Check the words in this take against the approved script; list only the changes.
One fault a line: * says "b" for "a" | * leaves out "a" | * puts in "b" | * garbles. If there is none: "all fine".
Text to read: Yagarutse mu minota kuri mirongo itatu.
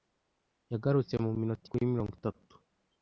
all fine